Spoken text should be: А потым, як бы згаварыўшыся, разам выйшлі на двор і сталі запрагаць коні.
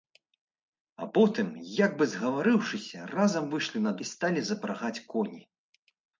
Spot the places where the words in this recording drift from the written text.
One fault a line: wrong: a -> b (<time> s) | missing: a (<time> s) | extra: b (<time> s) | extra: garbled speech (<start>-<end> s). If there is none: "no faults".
missing: двор (4.0 s)